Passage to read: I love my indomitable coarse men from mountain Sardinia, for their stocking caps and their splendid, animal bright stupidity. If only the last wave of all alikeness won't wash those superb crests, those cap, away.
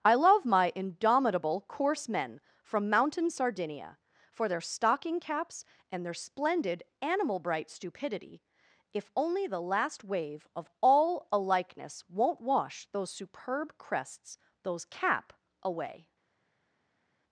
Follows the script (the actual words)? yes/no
yes